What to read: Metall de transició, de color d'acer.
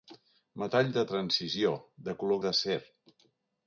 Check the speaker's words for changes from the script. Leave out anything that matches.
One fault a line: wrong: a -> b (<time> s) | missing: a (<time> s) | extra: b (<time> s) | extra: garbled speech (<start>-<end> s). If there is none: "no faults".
no faults